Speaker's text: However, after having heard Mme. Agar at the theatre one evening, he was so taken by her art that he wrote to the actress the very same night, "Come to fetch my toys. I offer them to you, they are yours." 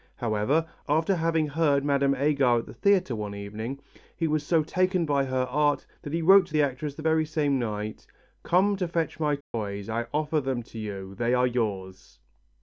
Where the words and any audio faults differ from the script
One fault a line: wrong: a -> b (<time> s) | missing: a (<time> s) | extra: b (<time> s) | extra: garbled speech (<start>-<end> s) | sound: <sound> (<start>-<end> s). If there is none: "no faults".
sound: dropout (9.4-9.5 s)